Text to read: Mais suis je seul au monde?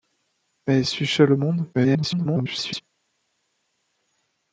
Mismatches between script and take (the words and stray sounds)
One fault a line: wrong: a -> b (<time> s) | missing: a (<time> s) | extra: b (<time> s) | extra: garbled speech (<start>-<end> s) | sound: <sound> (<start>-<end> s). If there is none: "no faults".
extra: garbled speech (1.7-2.8 s)